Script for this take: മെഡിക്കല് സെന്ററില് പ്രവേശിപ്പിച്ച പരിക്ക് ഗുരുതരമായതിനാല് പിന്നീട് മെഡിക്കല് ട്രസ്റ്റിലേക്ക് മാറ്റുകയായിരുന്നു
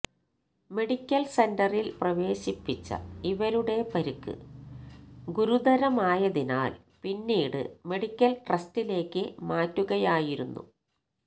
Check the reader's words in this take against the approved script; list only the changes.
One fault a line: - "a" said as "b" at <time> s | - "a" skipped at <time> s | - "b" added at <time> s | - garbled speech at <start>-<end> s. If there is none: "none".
- "ഇവരുടെ" added at 3.2 s